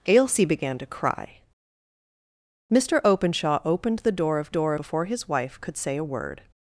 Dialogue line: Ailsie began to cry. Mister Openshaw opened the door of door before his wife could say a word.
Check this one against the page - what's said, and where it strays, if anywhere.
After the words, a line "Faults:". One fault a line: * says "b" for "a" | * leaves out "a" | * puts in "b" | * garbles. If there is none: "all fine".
Ailsie began to cry. Mister Openshaw opened the door of door before his wife could say a word.
Faults:
all fine